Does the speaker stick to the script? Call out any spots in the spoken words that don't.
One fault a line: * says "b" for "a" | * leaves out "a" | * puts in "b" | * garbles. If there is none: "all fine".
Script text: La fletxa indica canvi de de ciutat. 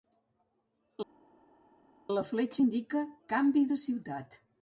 * leaves out "de"